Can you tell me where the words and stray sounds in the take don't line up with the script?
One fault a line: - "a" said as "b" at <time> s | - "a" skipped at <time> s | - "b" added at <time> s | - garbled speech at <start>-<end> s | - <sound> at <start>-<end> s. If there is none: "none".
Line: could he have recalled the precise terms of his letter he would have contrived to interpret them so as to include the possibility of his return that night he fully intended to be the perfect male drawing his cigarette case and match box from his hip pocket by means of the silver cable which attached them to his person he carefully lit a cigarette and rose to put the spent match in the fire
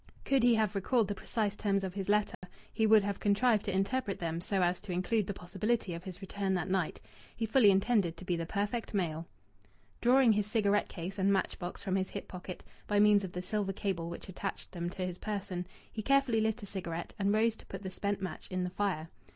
- dropout at 2.3-2.4 s